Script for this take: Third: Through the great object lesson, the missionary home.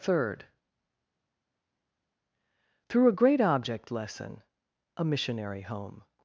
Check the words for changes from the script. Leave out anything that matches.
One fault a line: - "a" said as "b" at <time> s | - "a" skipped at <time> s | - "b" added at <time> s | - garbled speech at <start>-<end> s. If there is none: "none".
- "the" said as "a" at 3.1 s
- "the" said as "a" at 5.0 s